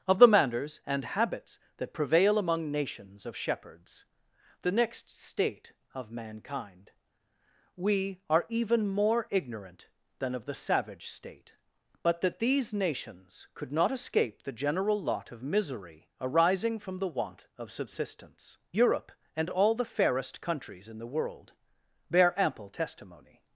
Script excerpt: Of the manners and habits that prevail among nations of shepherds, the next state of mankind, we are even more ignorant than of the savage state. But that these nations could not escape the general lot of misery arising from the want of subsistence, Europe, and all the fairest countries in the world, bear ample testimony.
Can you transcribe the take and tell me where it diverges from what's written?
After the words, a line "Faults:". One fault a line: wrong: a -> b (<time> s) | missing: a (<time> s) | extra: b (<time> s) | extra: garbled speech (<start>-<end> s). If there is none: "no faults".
Of the manners and habits that prevail among nations of shepherds, the next state of mankind, we are even more ignorant than of the savage state. But that these nations could not escape the general lot of misery arising from the want of subsistence, Europe, and all the fairest countries in the world, bear ample testimony.
Faults:
no faults